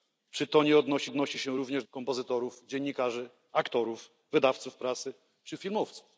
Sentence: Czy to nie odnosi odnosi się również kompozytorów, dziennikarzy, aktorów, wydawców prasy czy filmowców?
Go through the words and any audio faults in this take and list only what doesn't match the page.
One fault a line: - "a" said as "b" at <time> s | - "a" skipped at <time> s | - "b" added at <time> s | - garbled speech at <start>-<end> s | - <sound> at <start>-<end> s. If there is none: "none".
none